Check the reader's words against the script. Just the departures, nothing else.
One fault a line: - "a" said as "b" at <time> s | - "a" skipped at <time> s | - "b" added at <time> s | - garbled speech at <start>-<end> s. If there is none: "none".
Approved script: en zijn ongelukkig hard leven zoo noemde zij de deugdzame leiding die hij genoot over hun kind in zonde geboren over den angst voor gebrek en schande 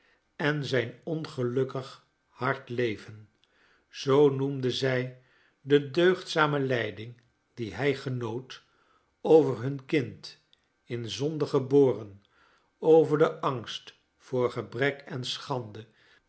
none